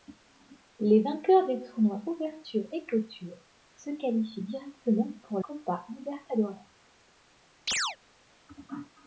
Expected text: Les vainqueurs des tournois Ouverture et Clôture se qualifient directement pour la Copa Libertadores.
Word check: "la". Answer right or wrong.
wrong